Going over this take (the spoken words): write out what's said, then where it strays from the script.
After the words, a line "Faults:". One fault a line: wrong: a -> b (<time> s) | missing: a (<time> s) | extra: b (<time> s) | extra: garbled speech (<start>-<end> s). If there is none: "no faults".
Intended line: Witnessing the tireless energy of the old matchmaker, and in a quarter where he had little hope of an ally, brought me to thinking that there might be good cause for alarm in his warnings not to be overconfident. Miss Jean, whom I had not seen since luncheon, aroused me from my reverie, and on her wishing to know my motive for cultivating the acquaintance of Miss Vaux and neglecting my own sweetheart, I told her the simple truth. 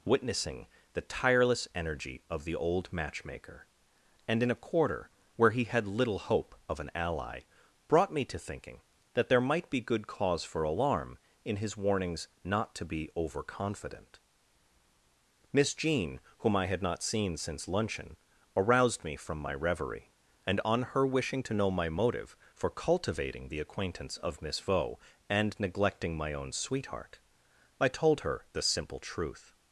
Witnessing the tireless energy of the old matchmaker, and in a quarter where he had little hope of an ally, brought me to thinking that there might be good cause for alarm in his warnings not to be overconfident. Miss Jean, whom I had not seen since luncheon, aroused me from my reverie, and on her wishing to know my motive for cultivating the acquaintance of Miss Vaux and neglecting my own sweetheart, I told her the simple truth.
Faults:
no faults